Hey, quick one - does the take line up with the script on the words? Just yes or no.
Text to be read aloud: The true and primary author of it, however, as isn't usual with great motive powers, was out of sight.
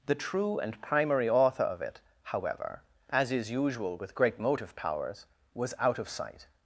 no